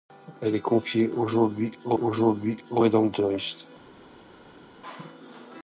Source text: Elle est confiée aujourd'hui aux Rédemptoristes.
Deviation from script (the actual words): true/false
true